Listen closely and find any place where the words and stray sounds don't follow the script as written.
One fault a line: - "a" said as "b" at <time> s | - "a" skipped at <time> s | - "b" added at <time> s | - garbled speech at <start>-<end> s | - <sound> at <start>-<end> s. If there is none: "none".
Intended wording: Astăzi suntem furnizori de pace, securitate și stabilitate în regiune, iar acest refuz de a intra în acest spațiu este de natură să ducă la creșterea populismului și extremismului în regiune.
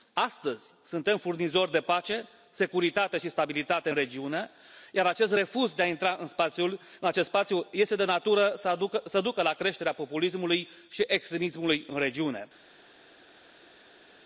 none